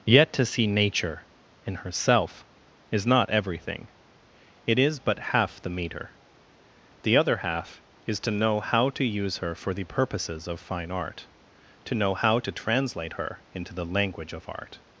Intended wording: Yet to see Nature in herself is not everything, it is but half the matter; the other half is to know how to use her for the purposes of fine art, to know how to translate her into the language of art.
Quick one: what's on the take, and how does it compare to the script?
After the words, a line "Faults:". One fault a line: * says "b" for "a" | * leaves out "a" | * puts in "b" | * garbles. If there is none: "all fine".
Yet to see Nature in herself is not everything, it is but half the meter; the other half is to know how to use her for the purposes of fine art, to know how to translate her into the language of art.
Faults:
* says "meter" for "matter"